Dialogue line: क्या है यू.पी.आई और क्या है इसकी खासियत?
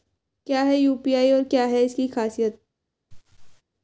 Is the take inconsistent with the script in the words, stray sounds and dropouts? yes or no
yes